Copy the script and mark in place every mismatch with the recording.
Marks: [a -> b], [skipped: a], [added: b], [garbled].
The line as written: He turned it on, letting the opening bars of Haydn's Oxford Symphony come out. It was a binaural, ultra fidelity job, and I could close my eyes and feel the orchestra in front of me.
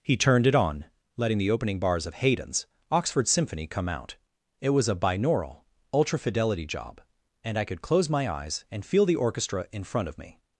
He turned it on, letting the opening bars of Haydn's Oxford Symphony come out. It was a binaural, ultra fidelity job, and I could close my eyes and feel the orchestra in front of me.